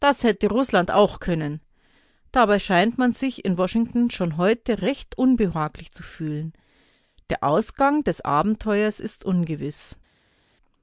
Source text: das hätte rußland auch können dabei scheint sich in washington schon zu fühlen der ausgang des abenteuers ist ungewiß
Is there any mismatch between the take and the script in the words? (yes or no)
yes